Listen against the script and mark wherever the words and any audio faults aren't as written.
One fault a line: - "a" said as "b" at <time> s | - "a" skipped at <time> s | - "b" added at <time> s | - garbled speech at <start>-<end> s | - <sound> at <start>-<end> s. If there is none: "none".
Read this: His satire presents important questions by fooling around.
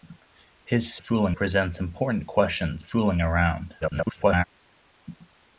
- "satire" said as "fooling" at 1.0 s
- "by" skipped at 2.8 s
- garbled speech at 3.8-4.4 s